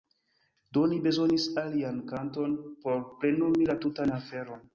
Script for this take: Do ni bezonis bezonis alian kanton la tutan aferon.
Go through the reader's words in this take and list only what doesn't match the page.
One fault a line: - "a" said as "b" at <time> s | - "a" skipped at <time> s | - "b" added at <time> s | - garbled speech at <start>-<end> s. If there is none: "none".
- "bezonis" skipped at 1.4 s
- "por plenumi" added at 2.9 s